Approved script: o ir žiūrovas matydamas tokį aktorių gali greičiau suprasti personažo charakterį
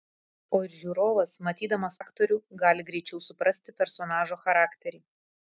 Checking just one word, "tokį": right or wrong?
wrong